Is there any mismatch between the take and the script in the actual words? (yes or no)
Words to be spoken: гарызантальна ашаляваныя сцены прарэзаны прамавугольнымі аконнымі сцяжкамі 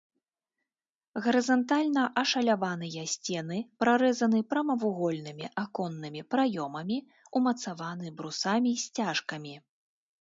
yes